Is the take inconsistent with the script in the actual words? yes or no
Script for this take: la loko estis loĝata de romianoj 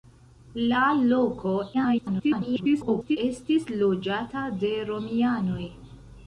yes